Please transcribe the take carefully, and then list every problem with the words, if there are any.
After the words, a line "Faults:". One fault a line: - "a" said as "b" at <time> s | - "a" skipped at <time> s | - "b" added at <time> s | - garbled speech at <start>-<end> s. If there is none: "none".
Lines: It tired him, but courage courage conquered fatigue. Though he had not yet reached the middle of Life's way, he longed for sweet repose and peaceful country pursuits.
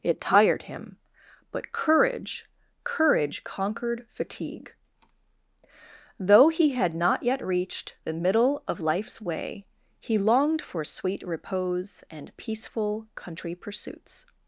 It tired him, but courage courage conquered fatigue. Though he had not yet reached the middle of Life's way, he longed for sweet repose and peaceful country pursuits.
Faults:
none